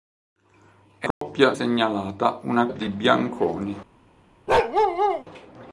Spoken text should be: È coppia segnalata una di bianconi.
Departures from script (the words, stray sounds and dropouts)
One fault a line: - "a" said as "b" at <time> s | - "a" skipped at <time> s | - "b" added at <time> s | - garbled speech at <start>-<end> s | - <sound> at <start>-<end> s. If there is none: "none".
- dropout at 1.1-1.2 s
- bark at 4.5-5.2 s